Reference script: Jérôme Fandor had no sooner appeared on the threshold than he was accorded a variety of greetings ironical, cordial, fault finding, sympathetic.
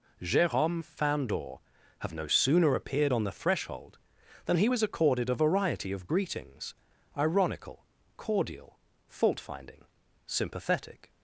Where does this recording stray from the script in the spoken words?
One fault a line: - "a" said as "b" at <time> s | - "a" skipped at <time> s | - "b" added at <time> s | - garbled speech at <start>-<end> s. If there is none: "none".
- "had" said as "have" at 2.0 s